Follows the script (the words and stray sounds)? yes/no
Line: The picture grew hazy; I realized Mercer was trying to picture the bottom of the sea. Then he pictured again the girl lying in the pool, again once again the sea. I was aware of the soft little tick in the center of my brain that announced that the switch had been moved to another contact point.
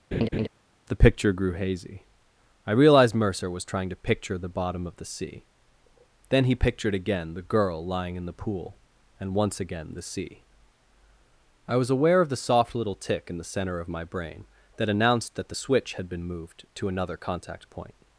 no